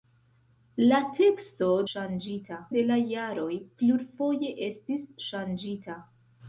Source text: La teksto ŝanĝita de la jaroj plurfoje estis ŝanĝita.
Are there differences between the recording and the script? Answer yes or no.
no